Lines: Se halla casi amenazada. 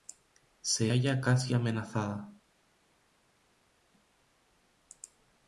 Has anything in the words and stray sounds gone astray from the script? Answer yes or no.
no